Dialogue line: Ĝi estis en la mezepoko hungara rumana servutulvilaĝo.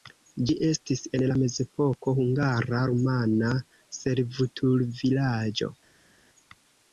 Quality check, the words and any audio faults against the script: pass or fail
pass